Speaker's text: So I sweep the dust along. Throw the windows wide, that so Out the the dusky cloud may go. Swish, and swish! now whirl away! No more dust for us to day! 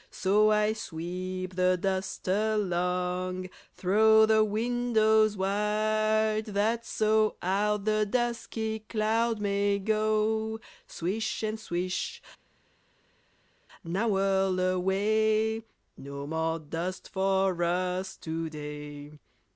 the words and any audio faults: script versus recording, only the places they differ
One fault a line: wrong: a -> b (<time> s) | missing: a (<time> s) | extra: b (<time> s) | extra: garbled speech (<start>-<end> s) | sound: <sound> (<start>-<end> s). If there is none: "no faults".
missing: the (8.1 s)